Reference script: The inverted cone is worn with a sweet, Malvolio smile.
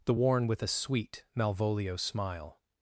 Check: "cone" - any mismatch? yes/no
yes